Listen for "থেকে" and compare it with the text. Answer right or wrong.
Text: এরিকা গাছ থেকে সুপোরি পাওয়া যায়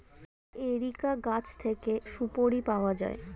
right